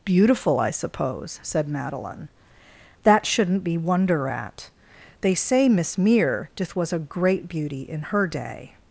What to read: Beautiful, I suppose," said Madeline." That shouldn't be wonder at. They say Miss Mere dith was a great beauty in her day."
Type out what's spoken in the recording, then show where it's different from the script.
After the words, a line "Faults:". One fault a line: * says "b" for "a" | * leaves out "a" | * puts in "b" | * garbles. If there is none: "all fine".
Beautiful, I suppose," said Madeline." That shouldn't be wonder at. They say Miss Mere dith was a great beauty in her day."
Faults:
all fine